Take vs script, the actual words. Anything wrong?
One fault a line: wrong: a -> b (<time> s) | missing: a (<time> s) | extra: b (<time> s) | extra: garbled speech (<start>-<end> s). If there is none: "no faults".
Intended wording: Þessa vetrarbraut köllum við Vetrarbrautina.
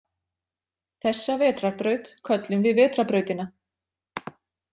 no faults